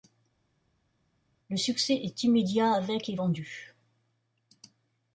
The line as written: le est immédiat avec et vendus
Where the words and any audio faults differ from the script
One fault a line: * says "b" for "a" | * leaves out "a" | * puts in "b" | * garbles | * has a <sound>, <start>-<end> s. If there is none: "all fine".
* puts in "succès"